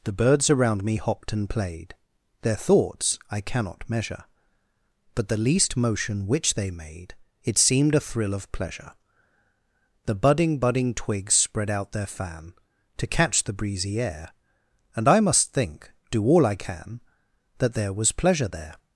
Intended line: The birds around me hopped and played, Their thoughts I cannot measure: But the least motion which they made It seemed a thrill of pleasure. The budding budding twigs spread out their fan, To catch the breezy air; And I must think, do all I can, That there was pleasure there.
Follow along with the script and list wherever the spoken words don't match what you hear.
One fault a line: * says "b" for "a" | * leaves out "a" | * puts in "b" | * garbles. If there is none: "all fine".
all fine